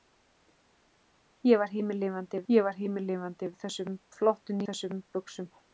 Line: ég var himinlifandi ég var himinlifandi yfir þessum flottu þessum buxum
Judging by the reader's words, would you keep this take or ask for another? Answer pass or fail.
pass